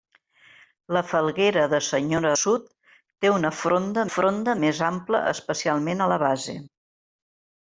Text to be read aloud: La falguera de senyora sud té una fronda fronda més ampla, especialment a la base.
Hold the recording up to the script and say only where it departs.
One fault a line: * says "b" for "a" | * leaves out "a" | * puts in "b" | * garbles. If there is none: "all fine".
all fine